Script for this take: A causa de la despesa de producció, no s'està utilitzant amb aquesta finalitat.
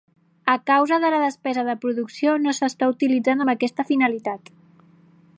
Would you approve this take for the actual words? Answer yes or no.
yes